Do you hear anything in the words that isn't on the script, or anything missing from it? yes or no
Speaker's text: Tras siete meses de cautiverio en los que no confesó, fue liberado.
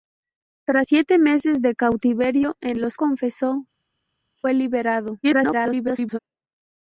yes